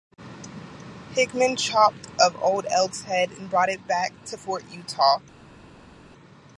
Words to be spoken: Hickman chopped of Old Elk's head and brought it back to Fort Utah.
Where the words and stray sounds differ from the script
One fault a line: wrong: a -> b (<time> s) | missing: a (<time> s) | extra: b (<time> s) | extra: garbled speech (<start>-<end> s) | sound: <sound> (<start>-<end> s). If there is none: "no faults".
no faults